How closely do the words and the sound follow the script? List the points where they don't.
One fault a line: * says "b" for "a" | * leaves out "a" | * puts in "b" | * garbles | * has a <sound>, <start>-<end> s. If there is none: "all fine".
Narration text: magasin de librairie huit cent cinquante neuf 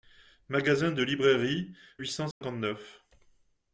* has a dropout, 2.3-2.4 s